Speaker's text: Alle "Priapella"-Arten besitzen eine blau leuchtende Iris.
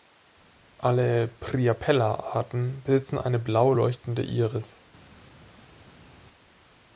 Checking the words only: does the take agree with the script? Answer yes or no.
yes